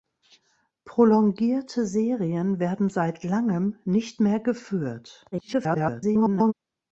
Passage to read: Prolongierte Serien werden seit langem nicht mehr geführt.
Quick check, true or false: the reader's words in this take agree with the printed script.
false